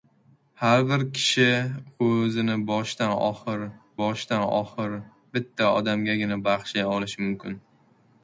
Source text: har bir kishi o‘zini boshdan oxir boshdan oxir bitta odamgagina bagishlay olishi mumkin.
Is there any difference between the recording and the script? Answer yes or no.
no